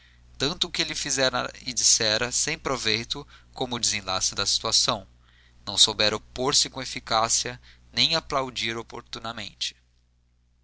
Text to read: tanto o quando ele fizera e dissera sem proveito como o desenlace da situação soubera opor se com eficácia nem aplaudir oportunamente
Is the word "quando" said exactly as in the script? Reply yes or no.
no